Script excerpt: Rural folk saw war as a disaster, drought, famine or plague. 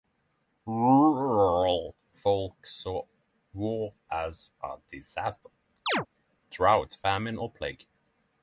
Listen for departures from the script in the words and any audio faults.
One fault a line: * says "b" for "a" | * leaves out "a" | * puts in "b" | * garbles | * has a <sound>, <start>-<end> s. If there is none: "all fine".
* has a chirp, 5.9-6.1 s